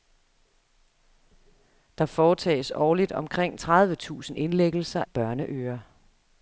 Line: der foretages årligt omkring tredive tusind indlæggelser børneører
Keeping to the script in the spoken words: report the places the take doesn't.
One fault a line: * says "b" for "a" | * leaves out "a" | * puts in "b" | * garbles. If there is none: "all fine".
all fine